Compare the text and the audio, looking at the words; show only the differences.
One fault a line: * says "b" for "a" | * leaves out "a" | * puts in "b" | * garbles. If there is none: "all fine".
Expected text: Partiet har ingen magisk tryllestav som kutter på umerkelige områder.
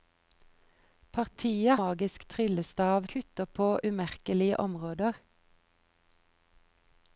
* leaves out "har ingen"
* leaves out "som"